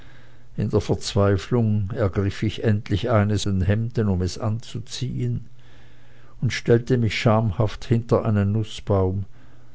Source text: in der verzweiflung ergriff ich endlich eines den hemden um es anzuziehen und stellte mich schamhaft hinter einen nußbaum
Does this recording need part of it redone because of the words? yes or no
no